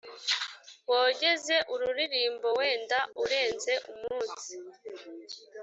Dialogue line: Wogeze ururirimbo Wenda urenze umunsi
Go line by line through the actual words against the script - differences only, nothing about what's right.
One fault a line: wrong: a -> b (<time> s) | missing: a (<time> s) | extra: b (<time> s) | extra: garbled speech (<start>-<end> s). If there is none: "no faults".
no faults